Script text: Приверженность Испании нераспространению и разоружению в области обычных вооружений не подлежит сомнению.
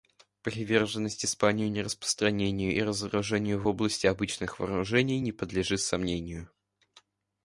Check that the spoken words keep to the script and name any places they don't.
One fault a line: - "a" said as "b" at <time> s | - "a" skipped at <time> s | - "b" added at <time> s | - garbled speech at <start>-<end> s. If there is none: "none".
none